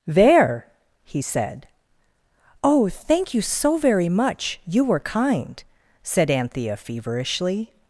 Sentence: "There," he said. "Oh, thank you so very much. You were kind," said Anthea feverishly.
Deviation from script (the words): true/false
false